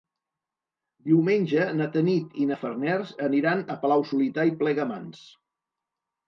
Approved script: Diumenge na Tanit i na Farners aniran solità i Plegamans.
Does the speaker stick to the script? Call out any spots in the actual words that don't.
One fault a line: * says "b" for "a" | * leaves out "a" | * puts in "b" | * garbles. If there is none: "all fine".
* puts in "a Palau"